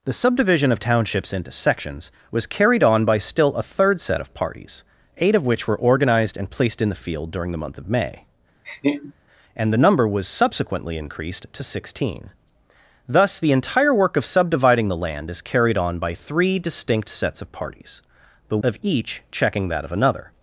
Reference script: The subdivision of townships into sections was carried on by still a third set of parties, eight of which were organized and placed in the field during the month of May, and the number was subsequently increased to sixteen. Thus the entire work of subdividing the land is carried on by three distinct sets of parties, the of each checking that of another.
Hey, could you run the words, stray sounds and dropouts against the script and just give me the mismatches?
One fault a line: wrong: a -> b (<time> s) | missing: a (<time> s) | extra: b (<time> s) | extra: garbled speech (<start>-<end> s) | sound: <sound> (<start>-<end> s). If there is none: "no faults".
sound: laugh (8.6-9.1 s)